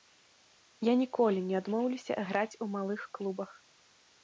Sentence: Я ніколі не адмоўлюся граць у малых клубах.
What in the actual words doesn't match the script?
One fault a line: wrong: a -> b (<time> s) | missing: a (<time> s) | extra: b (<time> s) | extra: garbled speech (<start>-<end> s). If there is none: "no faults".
no faults